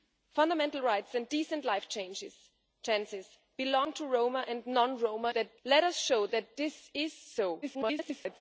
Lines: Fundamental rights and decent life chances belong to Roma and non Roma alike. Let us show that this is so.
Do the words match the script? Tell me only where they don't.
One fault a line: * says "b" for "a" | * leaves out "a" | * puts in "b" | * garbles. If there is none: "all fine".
* says "that" for "alike"
* garbles